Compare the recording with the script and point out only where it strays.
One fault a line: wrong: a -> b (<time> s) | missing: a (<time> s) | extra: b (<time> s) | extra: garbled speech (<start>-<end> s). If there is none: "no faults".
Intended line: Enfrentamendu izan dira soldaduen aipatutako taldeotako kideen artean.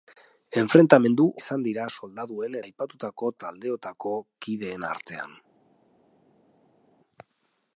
no faults